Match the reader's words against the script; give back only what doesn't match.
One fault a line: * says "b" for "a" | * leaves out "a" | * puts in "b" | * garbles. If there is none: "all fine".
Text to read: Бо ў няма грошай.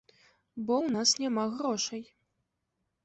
* puts in "нас"